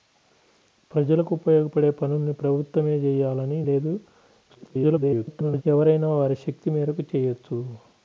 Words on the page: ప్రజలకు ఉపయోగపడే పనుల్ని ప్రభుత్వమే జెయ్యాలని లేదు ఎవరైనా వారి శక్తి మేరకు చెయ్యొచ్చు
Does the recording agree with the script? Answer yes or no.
no